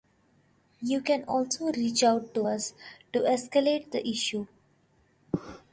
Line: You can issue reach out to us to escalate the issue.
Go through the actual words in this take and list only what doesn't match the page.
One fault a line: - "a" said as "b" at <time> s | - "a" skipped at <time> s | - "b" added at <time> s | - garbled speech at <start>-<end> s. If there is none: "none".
- "issue" said as "also" at 1.2 s